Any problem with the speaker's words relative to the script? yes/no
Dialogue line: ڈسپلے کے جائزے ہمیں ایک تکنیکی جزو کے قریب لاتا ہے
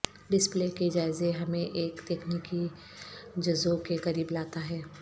no